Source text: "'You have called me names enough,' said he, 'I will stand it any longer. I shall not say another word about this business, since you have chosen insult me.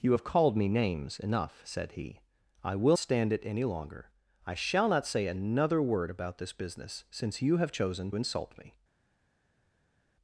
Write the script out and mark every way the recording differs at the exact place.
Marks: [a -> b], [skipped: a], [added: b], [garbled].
"'You have called me names enough,' said he, 'I will stand it any longer. I shall not say another word about this business, since you have chosen insult me.